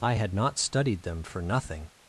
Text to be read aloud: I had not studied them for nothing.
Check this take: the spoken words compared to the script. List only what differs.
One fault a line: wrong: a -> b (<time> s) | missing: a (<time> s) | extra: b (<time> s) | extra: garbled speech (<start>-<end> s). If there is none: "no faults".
no faults